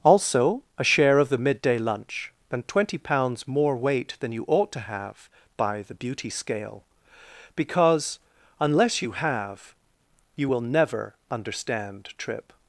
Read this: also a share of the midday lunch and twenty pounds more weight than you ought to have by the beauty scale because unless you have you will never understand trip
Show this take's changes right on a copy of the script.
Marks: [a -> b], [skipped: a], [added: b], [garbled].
also a share of the midday lunch and twenty pounds more weight than you ought to have by the beauty scale because unless you have you will never understand trip